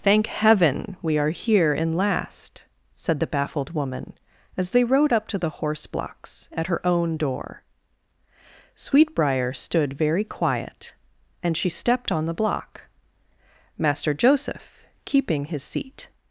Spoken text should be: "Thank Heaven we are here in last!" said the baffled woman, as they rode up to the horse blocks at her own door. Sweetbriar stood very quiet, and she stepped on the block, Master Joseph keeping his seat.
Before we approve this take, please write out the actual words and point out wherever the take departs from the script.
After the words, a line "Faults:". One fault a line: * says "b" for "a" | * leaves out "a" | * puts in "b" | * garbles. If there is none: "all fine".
"Thank Heaven we are here in last!" said the baffled woman, as they rode up to the horse blocks at her own door. Sweetbriar stood very quiet, and she stepped on the block, Master Joseph keeping his seat.
Faults:
all fine